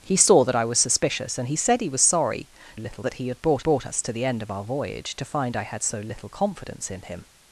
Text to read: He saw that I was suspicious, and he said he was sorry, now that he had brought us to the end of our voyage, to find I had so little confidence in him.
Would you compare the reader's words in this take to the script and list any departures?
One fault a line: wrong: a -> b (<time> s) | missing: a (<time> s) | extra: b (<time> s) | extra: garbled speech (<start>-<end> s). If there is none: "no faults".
wrong: now -> little (2.7 s)
extra: brought (3.6 s)